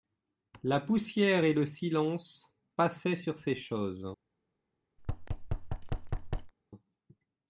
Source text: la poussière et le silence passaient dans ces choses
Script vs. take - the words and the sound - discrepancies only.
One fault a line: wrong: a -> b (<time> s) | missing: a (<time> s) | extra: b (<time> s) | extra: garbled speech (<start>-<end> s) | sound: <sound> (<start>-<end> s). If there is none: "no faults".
wrong: dans -> sur (3.2 s)
sound: thud (5.0-6.5 s)